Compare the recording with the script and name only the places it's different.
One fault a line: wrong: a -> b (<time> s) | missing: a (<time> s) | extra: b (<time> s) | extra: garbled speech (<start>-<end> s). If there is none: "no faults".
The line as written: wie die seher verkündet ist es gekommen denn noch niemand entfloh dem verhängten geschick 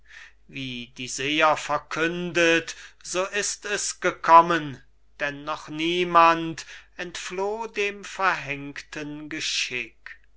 extra: so (3.0 s)